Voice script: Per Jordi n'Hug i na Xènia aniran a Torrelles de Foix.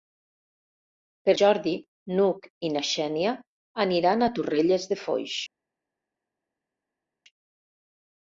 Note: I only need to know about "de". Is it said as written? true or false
true